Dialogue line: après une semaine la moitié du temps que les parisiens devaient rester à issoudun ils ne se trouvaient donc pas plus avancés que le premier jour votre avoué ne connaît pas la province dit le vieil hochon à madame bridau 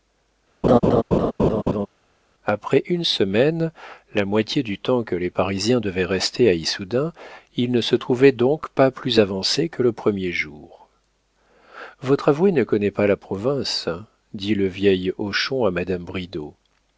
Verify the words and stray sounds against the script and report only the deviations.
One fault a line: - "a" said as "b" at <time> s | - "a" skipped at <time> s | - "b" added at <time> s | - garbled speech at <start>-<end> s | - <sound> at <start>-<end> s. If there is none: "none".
- laugh at 0.6-1.9 s